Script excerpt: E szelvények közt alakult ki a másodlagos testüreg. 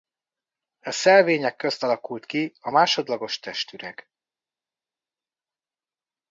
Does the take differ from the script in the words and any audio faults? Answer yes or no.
no